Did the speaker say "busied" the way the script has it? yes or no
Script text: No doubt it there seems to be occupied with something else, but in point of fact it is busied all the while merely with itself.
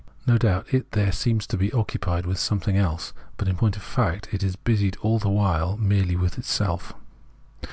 yes